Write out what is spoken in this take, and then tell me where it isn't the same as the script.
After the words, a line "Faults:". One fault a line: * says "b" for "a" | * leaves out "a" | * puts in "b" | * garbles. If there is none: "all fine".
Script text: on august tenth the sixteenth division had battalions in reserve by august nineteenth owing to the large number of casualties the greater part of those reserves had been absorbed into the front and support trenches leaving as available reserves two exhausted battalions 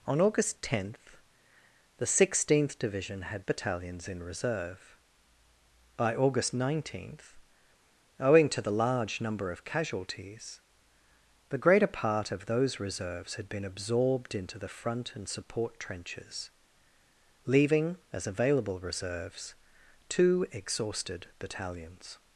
on august tenth the sixteenth division had battalions in reserve by august nineteenth owing to the large number of casualties the greater part of those reserves had been absorbed into the front and support trenches leaving as available reserves two exhausted battalions
Faults:
all fine